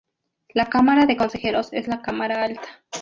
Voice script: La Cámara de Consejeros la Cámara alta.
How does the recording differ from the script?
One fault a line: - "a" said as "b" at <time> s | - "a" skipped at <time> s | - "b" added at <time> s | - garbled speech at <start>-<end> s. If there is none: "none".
- "es" added at 1.7 s